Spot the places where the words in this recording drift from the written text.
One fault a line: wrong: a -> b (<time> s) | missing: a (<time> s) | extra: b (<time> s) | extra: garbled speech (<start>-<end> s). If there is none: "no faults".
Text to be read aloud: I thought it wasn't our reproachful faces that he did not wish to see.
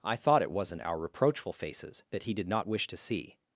no faults